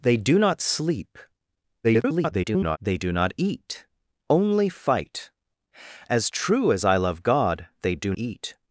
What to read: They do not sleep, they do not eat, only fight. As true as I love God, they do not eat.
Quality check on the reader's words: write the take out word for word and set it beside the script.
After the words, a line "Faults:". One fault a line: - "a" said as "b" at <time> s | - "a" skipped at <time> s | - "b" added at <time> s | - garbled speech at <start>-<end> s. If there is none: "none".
They do not sleep, [garbled] they do not eat, only fight. As true as I love God, they do eat.
Faults:
- garbled speech at 1.8-2.8 s
- "not" skipped at 8.1 s